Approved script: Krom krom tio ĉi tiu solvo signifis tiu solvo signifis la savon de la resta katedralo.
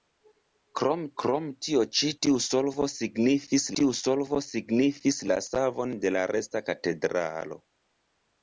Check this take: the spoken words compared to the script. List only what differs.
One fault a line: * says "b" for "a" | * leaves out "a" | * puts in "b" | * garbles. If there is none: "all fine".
all fine